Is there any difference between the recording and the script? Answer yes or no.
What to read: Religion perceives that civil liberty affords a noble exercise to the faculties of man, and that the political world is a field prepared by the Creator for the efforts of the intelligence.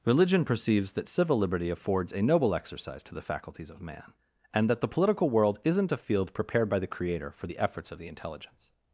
yes